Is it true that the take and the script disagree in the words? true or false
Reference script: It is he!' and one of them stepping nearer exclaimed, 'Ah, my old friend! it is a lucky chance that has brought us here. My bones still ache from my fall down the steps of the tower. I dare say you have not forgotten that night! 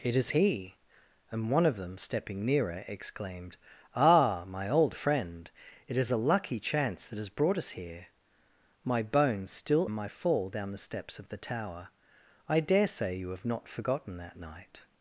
true